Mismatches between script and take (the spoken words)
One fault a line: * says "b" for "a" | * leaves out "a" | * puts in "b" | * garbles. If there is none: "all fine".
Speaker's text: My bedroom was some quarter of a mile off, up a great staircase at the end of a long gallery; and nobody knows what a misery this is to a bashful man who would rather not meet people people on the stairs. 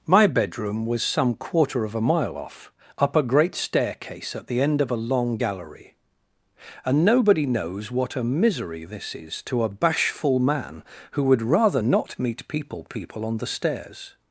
all fine